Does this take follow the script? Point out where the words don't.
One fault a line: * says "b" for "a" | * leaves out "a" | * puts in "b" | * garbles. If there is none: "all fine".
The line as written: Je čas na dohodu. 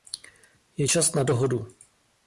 all fine